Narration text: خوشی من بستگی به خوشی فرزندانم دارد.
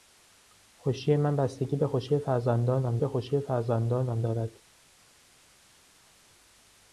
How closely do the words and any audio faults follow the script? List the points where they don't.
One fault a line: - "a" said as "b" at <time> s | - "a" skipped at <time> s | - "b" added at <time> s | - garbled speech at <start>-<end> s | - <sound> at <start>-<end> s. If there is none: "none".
- "به خوشی فرزندانم" added at 3.0 s